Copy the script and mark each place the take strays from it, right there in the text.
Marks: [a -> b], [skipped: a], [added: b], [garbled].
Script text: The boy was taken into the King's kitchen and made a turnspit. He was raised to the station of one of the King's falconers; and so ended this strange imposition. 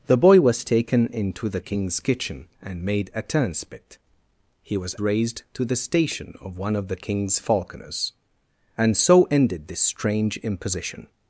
The boy was taken into the King's kitchen and made a turnspit. He was raised to the station of one of the King's falconers; and so ended this strange imposition.